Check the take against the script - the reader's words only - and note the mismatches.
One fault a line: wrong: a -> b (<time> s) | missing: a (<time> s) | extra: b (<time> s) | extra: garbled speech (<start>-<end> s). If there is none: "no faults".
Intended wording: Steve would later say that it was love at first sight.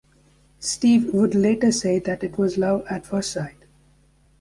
no faults